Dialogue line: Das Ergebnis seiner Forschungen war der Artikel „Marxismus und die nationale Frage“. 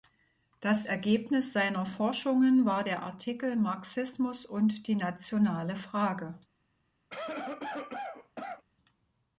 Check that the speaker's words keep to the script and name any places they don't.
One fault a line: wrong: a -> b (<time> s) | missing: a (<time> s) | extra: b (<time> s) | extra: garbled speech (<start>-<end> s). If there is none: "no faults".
no faults